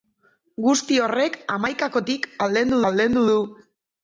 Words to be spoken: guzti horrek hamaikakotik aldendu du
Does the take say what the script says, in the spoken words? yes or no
no